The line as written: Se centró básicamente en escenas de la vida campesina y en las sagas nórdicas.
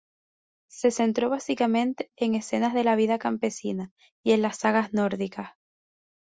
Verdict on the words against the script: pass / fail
pass